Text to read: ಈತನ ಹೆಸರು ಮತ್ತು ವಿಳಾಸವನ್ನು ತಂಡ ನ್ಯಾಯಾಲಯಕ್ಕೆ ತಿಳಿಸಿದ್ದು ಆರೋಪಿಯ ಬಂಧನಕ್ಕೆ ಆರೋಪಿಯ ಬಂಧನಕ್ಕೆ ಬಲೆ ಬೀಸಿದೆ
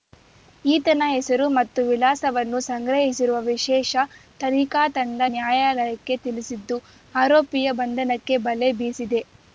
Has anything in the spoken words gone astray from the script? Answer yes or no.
yes